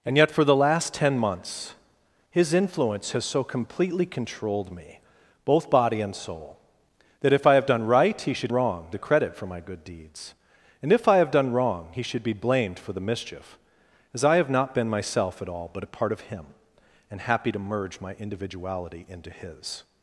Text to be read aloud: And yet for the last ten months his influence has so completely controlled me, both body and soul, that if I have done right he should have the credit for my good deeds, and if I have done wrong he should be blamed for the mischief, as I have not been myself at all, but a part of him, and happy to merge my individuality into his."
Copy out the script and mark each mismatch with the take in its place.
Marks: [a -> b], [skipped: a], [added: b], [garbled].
And yet for the last ten months his influence has so completely controlled me, both body and soul, that if I have done right he should [have -> wrong] the credit for my good deeds, and if I have done wrong he should be blamed for the mischief, as I have not been myself at all, but a part of him, and happy to merge my individuality into his."